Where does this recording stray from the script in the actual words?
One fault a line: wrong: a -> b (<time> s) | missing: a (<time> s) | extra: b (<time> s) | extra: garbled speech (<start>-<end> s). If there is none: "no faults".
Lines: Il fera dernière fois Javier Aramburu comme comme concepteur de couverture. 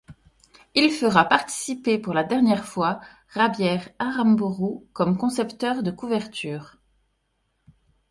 extra: participer pour la (1.2 s)
missing: comme (5.2 s)